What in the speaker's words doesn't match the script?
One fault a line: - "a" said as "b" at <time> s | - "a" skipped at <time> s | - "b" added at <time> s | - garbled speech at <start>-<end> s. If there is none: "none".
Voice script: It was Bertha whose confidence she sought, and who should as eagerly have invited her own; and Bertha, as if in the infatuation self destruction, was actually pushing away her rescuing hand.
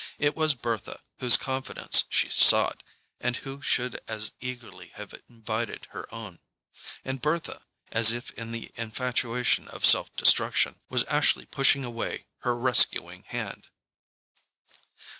- "of" added at 9.7 s